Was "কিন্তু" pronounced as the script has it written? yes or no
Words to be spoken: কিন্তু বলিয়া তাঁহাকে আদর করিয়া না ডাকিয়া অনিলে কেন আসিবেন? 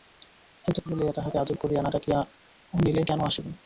yes